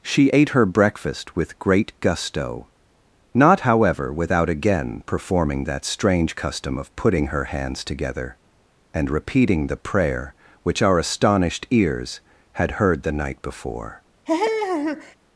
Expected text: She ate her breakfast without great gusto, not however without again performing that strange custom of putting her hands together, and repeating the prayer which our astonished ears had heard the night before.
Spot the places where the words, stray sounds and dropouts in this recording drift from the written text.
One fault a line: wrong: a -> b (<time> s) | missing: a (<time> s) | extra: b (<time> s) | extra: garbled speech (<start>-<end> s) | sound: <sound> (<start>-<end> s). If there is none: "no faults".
wrong: without -> with (1.3 s)
sound: laugh (14.3-15.2 s)